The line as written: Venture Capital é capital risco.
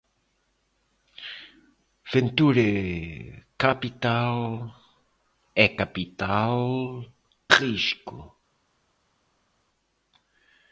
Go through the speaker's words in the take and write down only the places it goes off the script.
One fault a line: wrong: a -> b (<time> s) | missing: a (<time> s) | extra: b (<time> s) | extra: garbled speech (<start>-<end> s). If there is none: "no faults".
no faults